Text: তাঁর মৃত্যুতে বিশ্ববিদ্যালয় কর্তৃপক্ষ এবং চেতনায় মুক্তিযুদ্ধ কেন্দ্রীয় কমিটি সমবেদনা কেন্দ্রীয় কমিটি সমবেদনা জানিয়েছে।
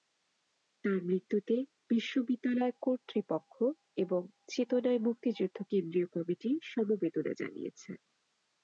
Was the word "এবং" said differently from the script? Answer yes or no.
no